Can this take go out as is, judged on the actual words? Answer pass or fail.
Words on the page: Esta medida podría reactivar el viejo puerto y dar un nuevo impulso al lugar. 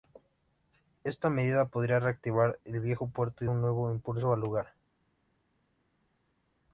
fail